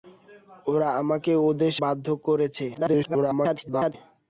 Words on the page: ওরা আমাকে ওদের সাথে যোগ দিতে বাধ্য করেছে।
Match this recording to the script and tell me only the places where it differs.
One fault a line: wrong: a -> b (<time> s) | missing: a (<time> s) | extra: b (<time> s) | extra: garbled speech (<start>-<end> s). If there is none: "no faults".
missing: সাথে যোগ দিতে (1.7 s)
extra: garbled speech (2.7-3.9 s)